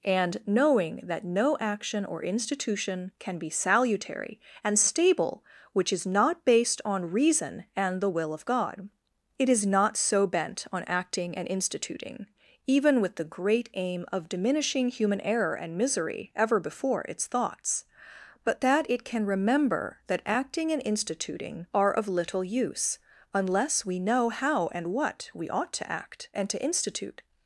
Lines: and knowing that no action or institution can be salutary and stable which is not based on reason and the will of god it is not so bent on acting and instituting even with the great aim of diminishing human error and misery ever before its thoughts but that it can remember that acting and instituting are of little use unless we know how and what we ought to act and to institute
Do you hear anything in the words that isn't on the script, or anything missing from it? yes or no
no